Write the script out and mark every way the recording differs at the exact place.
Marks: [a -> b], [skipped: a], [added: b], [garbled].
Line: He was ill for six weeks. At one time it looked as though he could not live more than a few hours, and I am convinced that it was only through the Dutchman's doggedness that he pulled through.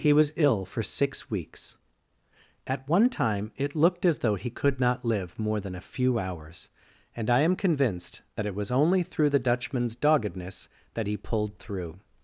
He was ill for six weeks. At one time it looked as though he could not live more than a few hours, and I am convinced that it was only through the Dutchman's doggedness that he pulled through.